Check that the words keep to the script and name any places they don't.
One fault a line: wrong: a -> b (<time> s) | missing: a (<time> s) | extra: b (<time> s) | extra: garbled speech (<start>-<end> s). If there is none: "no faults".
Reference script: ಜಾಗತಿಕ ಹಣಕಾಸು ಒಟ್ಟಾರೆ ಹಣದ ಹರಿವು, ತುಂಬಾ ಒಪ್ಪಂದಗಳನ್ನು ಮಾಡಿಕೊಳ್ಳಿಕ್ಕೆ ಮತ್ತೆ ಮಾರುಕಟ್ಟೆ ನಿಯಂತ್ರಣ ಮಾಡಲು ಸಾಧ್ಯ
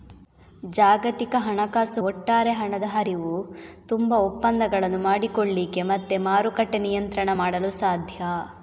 no faults